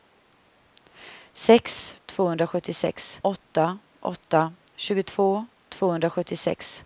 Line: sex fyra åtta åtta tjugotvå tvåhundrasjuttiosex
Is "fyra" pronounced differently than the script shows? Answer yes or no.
yes